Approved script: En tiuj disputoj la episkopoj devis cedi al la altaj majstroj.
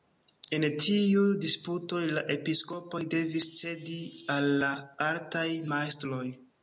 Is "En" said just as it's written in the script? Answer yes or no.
yes